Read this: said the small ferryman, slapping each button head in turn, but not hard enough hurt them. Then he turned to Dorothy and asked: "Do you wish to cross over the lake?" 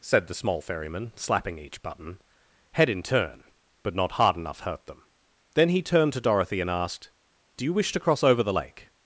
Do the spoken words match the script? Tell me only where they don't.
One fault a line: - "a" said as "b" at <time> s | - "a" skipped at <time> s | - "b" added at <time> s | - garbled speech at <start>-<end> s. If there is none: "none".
none